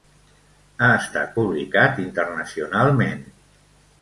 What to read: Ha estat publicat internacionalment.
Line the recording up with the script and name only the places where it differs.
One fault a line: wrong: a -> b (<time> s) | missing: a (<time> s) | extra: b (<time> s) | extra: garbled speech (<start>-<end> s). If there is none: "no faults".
no faults